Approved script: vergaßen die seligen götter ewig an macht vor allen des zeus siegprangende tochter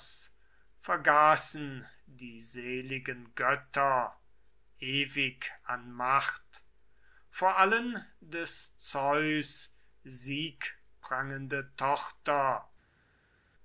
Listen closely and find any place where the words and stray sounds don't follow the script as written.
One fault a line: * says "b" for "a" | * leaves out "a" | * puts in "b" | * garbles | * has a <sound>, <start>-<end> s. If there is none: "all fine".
all fine